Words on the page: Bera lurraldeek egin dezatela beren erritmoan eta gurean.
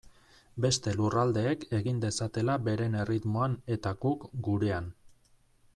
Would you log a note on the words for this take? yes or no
yes